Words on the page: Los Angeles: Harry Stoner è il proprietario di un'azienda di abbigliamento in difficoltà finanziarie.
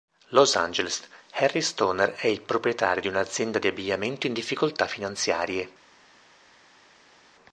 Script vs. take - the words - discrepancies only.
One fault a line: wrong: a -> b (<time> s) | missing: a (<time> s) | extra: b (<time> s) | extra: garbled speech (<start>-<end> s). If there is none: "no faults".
no faults